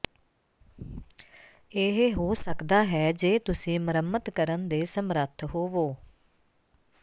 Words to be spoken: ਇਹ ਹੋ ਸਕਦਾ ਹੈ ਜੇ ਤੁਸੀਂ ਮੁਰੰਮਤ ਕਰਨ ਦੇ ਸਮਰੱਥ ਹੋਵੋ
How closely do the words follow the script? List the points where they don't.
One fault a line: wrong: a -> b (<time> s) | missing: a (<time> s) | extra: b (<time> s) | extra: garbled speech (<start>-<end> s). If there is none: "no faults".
no faults